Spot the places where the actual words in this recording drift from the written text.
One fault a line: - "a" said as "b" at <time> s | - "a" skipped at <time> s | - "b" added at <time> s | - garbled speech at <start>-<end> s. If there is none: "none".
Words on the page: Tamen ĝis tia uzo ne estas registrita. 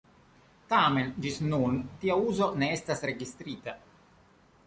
- "nun" added at 1.5 s